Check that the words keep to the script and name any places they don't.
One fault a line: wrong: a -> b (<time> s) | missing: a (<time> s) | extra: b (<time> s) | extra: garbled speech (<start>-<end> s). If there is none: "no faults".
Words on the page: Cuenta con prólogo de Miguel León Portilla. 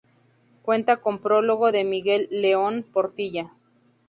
no faults